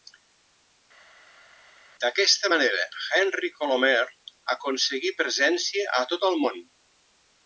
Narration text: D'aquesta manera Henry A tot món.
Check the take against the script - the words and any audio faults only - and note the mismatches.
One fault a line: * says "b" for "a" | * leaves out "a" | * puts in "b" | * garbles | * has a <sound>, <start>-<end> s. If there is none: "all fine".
* puts in "Colomer aconseguí presència"
* puts in "el"